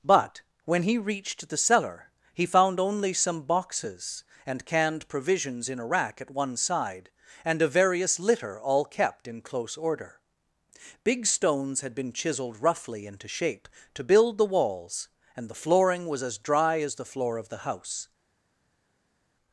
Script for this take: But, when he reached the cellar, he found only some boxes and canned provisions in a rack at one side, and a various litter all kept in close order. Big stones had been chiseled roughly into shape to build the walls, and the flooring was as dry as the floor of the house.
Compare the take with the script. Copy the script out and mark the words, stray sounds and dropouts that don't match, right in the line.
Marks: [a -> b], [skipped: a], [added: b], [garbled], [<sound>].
But, when he reached the cellar, he found only some boxes and canned provisions in a rack at one side, and a various litter all kept in close order. Big stones had been chiseled roughly into shape to build the walls, and the flooring was as dry as the floor of the house.